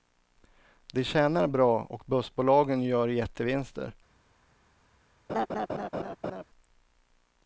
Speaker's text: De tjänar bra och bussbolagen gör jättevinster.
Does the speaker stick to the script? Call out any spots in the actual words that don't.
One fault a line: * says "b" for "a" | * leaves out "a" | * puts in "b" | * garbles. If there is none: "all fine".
all fine